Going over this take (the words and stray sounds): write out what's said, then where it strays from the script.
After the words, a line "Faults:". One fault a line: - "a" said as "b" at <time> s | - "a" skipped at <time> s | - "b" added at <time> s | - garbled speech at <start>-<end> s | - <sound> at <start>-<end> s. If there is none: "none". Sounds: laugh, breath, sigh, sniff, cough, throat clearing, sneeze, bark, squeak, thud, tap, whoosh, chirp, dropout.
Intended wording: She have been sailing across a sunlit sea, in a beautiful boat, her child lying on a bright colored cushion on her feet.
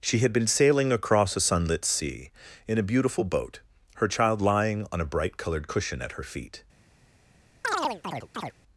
She had been sailing across a sunlit sea, in a beautiful boat, her child lying on a bright colored cushion at her feet.
Faults:
- "have" said as "had" at 0.2 s
- "on" said as "at" at 6.0 s
- chirp at 7.6-8.5 s